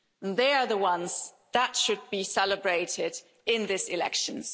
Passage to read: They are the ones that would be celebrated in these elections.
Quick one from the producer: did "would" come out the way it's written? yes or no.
no